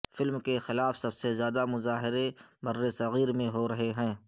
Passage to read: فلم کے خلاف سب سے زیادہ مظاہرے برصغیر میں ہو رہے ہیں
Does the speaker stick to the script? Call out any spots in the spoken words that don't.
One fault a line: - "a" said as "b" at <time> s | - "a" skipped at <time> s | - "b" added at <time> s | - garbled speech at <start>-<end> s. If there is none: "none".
none